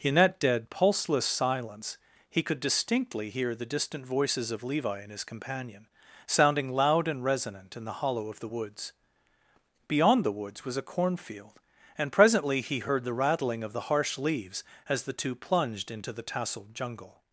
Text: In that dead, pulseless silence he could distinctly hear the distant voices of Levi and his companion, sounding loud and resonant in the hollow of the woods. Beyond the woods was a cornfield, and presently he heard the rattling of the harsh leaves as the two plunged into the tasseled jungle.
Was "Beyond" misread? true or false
false